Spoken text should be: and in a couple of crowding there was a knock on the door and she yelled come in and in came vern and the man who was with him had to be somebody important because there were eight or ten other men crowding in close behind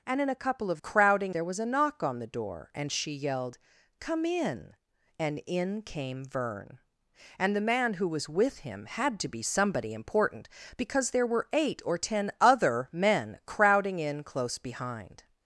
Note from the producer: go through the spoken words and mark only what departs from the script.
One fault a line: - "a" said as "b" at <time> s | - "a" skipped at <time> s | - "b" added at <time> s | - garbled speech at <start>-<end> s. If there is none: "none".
none